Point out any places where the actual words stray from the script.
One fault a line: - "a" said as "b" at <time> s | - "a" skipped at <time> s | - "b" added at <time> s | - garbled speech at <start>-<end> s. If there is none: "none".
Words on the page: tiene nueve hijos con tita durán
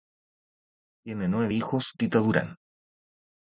- "con" skipped at 2.0 s